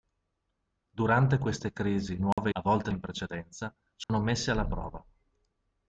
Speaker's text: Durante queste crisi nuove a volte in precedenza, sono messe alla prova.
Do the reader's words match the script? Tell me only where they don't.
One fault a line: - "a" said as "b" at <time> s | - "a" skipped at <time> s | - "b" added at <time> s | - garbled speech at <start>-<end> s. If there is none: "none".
none